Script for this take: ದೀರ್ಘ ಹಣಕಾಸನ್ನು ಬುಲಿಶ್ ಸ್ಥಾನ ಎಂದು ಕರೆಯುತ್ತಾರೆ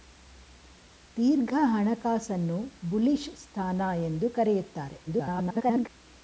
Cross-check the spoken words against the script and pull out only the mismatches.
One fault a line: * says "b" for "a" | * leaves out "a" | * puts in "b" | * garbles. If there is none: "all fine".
* garbles